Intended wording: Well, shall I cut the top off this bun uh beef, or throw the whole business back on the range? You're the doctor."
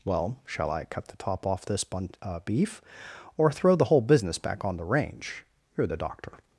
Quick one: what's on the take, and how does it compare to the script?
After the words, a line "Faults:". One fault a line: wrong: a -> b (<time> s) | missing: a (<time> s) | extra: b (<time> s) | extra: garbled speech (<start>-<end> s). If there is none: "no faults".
Well, shall I cut the top off this bun uh beef, or throw the whole business back on the range? You're the doctor."
Faults:
no faults